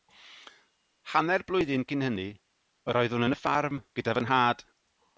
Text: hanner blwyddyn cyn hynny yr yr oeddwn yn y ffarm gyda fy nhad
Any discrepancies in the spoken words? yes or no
yes